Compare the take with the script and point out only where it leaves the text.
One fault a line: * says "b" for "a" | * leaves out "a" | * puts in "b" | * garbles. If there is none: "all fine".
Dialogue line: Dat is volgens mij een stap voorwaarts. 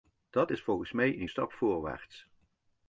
all fine